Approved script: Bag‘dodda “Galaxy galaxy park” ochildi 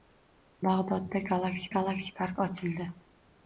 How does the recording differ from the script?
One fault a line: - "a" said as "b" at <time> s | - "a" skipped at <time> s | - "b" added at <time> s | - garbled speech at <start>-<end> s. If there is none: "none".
none